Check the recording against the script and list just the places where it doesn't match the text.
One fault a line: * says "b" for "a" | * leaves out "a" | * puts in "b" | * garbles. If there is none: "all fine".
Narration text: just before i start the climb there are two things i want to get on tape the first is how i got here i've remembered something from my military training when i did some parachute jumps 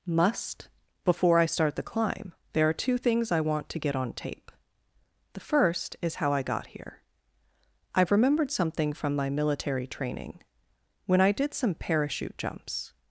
* says "must" for "just"